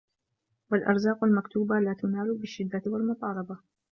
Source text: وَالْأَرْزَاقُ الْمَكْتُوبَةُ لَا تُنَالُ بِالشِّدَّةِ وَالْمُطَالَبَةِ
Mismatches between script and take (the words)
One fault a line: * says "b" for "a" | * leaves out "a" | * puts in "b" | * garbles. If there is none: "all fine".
all fine